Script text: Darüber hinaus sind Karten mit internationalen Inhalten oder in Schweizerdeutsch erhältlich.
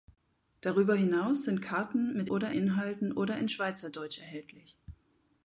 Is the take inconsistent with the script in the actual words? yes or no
yes